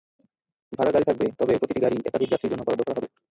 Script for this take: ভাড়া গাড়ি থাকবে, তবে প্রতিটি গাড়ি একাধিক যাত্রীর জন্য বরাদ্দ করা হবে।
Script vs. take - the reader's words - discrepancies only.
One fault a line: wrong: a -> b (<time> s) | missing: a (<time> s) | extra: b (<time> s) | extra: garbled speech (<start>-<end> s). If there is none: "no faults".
no faults